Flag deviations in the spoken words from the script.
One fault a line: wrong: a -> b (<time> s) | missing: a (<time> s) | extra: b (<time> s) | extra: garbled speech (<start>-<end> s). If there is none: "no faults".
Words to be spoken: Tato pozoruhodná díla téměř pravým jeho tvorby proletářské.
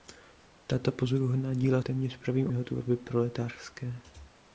no faults